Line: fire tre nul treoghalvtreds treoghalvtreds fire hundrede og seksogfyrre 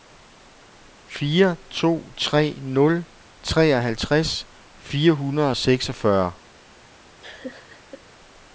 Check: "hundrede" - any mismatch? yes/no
no